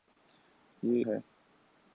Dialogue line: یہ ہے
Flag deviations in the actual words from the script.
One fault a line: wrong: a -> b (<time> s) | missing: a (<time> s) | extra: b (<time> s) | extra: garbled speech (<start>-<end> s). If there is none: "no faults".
no faults